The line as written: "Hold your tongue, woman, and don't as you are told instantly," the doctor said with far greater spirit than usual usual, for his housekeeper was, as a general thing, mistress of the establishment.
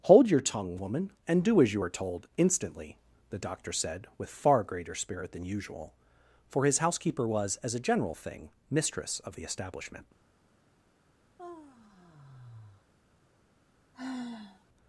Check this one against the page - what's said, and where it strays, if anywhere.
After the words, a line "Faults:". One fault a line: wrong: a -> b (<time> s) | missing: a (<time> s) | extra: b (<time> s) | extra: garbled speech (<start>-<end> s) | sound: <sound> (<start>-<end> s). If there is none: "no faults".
"Hold your tongue, woman, and do as you are told instantly," the doctor said with far greater spirit than usual, for his housekeeper was, as a general thing, mistress of the establishment.
Faults:
wrong: don't -> do (1.4 s)
missing: usual (5.9 s)
sound: sigh (11.4-12.8 s)
sound: sigh (13.9-14.6 s)